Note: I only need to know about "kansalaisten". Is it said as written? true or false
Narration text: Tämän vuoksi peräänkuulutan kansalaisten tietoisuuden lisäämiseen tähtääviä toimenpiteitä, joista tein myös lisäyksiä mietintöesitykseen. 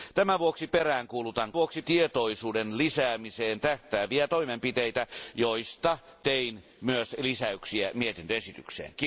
false